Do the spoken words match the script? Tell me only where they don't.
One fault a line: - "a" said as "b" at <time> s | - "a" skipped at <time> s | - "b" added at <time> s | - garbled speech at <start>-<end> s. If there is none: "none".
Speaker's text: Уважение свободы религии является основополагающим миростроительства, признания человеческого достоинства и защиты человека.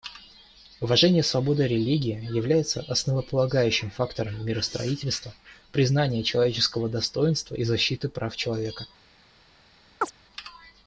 - "фактором" added at 3.9 s
- "прав" added at 8.1 s